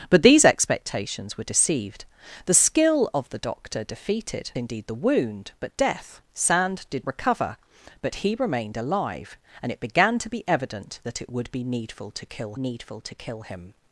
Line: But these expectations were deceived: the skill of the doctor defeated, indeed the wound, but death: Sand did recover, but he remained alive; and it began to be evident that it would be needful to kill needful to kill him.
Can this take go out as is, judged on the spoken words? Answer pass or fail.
pass